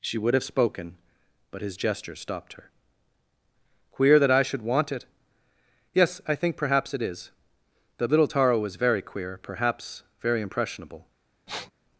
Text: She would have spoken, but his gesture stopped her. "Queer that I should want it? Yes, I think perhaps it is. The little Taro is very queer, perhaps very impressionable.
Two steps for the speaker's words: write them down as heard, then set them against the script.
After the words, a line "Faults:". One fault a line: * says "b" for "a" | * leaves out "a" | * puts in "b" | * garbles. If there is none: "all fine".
She would have spoken, but his gesture stopped her. "Queer that I should want it? Yes, I think perhaps it is. The little Taro was very queer, perhaps very impressionable.
Faults:
* says "was" for "is"